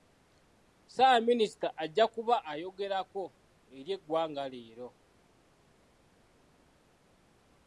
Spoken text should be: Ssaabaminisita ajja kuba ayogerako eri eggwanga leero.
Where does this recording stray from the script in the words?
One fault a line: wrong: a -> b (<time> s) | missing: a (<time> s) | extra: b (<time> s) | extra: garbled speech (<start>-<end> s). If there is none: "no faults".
no faults